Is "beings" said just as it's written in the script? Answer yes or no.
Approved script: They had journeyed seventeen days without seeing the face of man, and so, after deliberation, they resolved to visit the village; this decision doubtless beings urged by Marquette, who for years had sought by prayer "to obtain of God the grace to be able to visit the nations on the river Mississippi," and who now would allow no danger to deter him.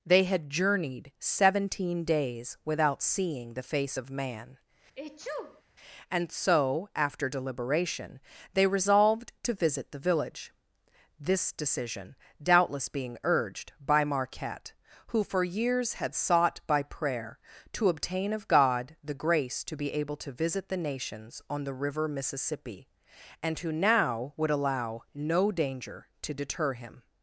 no